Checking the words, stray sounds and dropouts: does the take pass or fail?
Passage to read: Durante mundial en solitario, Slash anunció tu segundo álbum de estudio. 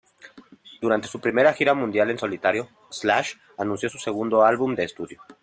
fail